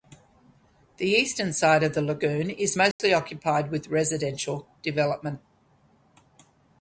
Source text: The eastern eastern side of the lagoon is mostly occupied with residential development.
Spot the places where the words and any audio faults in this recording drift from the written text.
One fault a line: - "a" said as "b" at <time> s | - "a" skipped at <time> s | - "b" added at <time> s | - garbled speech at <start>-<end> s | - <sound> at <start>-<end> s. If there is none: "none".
- "eastern" skipped at 1.5 s
- dropout at 2.9-3.0 s